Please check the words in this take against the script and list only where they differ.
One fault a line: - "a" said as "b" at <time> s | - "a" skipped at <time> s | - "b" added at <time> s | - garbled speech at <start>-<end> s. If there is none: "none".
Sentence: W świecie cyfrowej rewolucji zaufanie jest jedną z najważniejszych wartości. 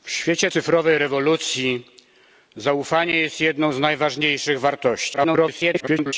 - garbled speech at 5.1-6.1 s